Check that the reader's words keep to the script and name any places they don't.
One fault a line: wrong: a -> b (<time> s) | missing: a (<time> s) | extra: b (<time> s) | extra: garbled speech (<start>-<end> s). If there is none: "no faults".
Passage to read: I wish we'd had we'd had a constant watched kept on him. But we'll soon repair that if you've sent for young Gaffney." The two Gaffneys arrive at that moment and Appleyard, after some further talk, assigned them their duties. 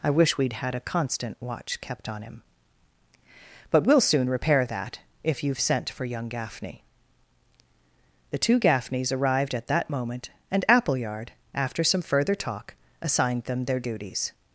missing: we'd had (0.7 s)
wrong: watched -> watch (1.4 s)
wrong: arrive -> arrived (9.1 s)